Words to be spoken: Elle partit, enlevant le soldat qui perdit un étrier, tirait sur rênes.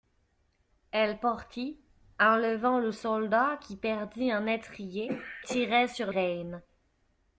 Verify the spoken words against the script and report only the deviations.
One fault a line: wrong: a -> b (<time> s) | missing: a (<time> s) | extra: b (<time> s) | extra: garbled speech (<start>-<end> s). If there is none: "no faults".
no faults